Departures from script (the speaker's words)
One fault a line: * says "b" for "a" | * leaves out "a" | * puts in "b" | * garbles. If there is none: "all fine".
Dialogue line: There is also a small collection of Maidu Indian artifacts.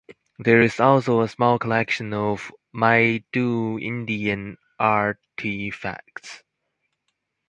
all fine